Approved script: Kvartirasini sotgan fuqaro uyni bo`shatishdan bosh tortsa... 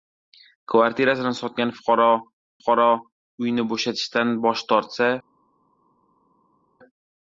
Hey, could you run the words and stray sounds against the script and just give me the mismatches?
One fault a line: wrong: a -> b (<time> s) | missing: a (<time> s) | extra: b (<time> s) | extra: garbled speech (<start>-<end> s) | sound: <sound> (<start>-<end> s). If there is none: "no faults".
extra: fuqaro (2.6 s)